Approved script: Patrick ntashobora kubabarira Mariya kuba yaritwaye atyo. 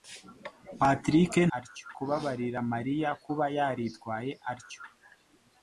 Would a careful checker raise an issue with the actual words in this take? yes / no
yes